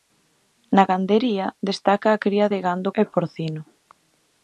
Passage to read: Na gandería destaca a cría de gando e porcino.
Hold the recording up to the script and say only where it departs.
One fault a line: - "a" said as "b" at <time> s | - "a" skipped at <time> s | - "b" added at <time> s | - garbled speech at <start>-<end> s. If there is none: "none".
none